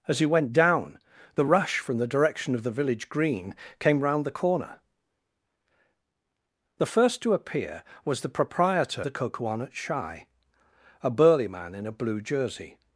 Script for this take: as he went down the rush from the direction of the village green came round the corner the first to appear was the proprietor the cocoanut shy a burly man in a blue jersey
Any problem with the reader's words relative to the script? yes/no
no